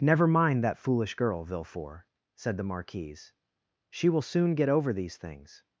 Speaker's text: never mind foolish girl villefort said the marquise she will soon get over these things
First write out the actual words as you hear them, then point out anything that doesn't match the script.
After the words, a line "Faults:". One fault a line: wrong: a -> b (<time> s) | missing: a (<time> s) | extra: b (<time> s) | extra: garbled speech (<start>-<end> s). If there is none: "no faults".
never mind that foolish girl villefort said the marquise she will soon get over these things
Faults:
extra: that (0.6 s)